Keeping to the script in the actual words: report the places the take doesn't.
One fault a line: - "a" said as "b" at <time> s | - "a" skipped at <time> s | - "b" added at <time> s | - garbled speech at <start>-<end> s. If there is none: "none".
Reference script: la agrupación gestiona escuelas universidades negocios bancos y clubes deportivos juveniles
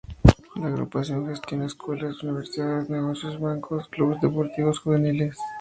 - "y" skipped at 3.9 s